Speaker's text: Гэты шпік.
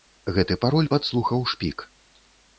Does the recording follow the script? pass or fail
fail